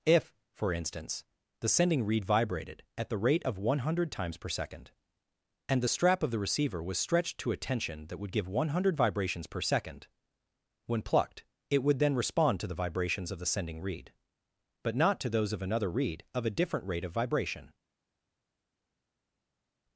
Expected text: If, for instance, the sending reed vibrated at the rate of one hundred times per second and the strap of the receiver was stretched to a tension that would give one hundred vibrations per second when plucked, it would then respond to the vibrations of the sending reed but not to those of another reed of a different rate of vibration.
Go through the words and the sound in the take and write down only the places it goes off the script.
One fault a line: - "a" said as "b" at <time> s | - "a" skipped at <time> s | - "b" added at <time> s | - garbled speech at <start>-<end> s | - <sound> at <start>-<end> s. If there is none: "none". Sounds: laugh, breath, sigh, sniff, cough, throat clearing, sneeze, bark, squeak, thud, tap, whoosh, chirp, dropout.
none